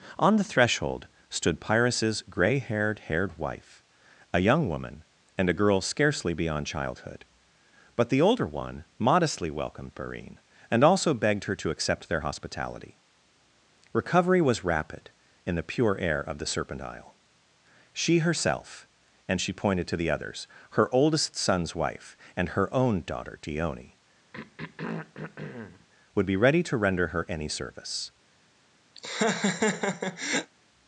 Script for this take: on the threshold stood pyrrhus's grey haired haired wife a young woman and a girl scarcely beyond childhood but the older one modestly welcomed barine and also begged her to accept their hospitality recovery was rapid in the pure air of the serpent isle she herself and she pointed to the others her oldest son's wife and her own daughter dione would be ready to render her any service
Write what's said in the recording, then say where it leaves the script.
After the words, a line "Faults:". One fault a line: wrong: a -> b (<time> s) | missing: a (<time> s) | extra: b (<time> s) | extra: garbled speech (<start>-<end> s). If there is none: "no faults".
on the threshold stood pyrrhus's grey haired haired wife a young woman and a girl scarcely beyond childhood but the older one modestly welcomed barine and also begged her to accept their hospitality recovery was rapid in the pure air of the serpent isle she herself and she pointed to the others her oldest son's wife and her own daughter dione would be ready to render her any service
Faults:
no faults